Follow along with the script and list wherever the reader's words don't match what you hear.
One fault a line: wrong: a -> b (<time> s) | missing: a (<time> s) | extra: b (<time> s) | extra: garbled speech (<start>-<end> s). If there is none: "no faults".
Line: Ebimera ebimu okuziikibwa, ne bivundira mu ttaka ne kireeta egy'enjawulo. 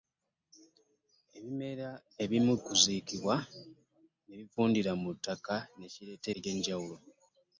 no faults